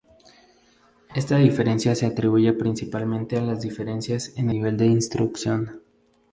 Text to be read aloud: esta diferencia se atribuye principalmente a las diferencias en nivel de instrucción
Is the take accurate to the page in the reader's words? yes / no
yes